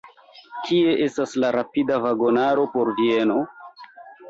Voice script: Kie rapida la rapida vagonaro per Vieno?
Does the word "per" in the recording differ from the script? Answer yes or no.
yes